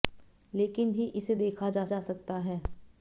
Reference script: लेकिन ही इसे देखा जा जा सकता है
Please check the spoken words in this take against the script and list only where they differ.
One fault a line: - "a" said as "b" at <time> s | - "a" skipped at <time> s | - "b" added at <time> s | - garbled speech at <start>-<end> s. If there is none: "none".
none